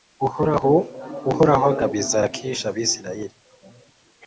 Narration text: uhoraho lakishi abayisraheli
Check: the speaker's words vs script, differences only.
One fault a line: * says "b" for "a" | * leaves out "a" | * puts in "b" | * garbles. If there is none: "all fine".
* puts in "agabiza"